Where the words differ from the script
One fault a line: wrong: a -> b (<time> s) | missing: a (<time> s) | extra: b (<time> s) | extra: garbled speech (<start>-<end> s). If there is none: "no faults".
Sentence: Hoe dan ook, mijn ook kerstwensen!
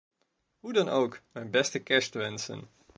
wrong: ook -> beste (1.5 s)